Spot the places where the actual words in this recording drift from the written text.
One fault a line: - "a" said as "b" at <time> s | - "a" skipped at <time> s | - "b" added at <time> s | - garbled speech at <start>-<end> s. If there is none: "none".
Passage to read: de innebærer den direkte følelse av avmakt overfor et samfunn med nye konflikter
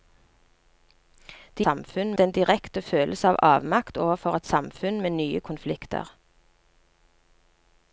- "innebærer" said as "samfunn" at 1.7 s